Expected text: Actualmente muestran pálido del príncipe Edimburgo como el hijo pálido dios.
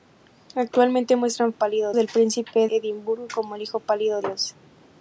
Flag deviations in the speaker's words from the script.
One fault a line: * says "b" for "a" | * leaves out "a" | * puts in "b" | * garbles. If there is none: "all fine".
all fine